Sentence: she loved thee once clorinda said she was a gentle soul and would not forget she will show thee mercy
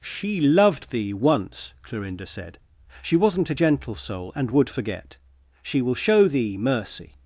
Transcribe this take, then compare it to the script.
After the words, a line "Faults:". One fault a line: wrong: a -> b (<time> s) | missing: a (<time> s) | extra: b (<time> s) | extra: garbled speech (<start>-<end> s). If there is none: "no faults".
she loved thee once clorinda said she wasn't a gentle soul and would forget she will show thee mercy
Faults:
wrong: was -> wasn't (3.1 s)
missing: not (4.7 s)